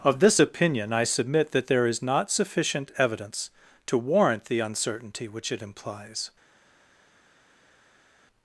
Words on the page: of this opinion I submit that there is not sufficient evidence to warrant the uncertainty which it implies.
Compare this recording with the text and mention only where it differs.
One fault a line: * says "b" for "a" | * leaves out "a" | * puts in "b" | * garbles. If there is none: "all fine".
all fine